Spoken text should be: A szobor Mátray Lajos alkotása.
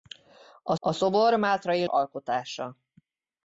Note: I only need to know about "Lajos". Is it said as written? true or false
false